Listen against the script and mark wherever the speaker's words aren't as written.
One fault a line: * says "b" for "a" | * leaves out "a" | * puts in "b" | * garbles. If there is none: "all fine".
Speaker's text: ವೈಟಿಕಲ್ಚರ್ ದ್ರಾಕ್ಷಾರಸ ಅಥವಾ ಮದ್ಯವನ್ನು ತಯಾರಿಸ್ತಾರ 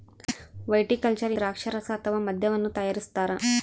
all fine